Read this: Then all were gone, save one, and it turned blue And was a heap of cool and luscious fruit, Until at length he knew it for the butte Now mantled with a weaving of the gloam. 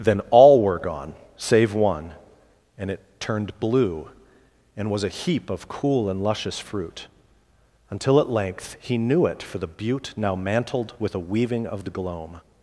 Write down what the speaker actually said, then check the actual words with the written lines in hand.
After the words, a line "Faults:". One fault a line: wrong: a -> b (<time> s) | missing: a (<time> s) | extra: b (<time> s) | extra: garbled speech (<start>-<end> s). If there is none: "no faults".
Then all were gone, save one, and it turned blue And was a heap of cool and luscious fruit, Until at length he knew it for the butte Now mantled with a weaving of the gloam.
Faults:
no faults